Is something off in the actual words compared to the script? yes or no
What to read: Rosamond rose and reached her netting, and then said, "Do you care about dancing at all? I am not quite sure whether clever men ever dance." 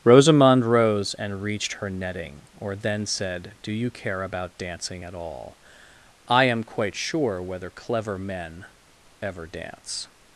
yes